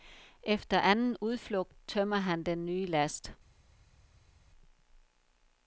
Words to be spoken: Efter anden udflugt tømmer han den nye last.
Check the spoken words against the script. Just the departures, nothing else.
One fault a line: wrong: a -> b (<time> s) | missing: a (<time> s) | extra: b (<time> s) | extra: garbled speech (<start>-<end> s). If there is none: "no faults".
no faults